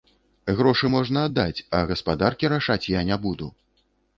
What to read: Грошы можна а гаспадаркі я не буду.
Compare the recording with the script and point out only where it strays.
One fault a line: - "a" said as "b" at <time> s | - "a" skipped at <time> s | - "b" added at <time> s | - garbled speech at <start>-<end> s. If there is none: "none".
- "аддаць" added at 1.3 s
- "рашаць" added at 2.6 s